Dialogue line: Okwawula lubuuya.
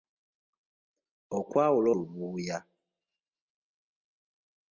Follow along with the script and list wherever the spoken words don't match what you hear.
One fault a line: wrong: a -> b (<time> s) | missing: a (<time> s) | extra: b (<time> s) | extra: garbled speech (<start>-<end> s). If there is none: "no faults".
no faults